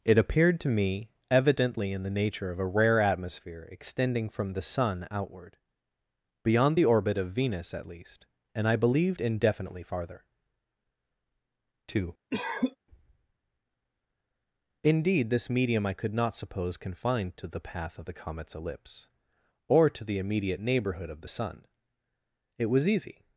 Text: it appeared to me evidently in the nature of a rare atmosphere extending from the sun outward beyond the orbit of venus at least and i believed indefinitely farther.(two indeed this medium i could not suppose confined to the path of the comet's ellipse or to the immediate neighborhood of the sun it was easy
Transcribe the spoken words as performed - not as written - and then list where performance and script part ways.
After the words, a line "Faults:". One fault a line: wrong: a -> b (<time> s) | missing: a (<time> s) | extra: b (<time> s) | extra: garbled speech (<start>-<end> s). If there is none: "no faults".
it appeared to me evidently in the nature of a rare atmosphere extending from the sun outward beyond the orbit of venus at least and i believed indefinitely farther.(two indeed this medium i could not suppose confined to the path of the comet's ellipse or to the immediate neighborhood of the sun it was easy
Faults:
no faults